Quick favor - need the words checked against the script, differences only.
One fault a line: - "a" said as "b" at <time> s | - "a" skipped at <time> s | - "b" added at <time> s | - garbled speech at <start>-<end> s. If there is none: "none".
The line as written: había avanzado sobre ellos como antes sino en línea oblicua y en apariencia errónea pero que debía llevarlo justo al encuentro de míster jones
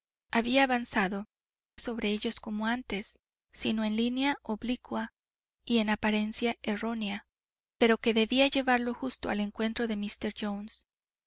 none